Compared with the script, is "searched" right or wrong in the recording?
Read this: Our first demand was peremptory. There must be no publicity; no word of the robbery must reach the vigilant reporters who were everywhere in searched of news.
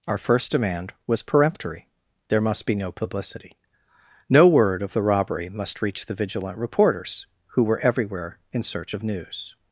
wrong